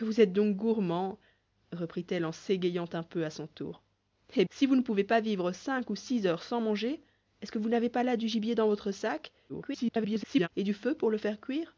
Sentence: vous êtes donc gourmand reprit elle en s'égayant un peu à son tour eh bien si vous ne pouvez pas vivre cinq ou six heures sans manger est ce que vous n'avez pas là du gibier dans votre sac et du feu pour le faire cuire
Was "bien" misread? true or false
true